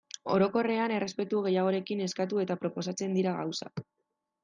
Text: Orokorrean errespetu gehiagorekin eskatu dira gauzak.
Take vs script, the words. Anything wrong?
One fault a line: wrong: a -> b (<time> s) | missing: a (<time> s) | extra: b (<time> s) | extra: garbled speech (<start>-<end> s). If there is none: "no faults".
extra: eta proposatzen (2.5 s)